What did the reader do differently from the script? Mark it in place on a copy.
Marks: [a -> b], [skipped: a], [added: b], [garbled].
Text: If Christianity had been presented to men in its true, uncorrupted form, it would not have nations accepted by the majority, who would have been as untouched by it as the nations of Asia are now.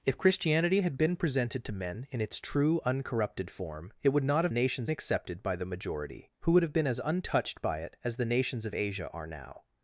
If Christianity had been presented to men in its true, uncorrupted form, it would not have nations accepted by the majority, who would have been as untouched by it as the nations of Asia are now.